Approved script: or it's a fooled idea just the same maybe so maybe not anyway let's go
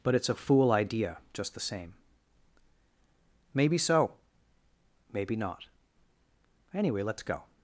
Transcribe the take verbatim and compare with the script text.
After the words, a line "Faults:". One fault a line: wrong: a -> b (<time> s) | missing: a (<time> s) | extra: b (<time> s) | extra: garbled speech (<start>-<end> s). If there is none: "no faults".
but it's a fool idea just the same maybe so maybe not anyway let's go
Faults:
wrong: or -> but (0.0 s)
wrong: fooled -> fool (0.3 s)